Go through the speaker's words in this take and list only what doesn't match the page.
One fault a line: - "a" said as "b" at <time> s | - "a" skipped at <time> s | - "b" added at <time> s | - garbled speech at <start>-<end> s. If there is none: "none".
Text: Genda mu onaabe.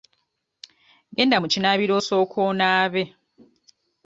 - "kinaabiro osooke" added at 1.5 s